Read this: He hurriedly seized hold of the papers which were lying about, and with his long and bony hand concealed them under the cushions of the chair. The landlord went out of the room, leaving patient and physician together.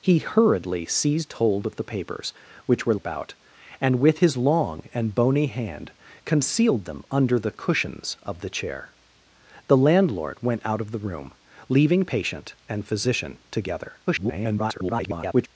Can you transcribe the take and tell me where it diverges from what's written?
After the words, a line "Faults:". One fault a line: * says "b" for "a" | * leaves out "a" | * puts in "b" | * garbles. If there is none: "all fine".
He hurriedly seized hold of the papers which were about, and with his long and bony hand concealed them under the cushions of the chair. The landlord went out of the room, leaving patient and physician together. [garbled]
Faults:
* leaves out "lying"
* garbles